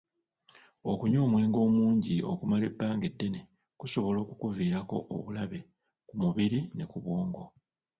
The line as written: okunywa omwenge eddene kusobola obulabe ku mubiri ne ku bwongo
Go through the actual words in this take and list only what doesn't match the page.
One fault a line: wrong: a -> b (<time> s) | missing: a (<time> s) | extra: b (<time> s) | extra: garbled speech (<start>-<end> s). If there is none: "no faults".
extra: omungi okumala ebbanga (1.7 s)
extra: okukuviirako (4.2 s)